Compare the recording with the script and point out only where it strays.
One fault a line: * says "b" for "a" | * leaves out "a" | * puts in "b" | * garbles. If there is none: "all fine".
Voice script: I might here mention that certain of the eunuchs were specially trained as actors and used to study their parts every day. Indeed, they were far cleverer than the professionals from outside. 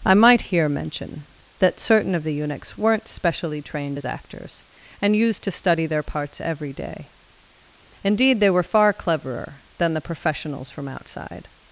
* says "weren't" for "were"